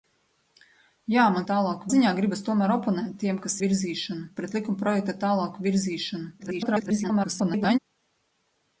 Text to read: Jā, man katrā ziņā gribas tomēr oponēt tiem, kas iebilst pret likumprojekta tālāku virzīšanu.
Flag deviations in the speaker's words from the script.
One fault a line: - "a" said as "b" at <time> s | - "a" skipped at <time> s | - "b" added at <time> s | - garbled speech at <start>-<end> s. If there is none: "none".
- "katrā" said as "tālāku" at 1.5 s
- "iebilst" said as "virzīšanu" at 3.7 s
- garbled speech at 6.4-7.8 s